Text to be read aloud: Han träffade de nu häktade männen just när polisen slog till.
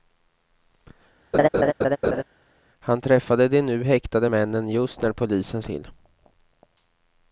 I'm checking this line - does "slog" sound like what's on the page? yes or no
no